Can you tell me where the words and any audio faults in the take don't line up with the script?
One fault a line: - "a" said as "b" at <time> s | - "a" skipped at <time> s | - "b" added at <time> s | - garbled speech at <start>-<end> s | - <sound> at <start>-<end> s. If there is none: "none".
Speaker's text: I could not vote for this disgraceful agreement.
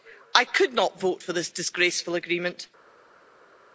none